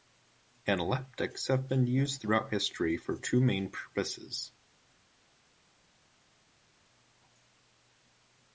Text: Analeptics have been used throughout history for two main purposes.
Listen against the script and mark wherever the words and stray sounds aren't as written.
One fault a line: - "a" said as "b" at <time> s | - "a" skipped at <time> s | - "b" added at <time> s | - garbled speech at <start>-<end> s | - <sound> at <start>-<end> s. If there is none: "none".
none